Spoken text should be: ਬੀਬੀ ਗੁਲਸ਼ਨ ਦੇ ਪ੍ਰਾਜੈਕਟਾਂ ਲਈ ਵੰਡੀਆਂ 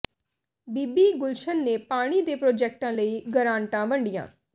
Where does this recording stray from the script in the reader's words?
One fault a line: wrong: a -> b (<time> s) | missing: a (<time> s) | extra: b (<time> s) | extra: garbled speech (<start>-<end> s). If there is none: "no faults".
extra: ਨੇ ਪਾਣੀ (1.6 s)
extra: ਗਰਾਂਟਾਂ (3.3 s)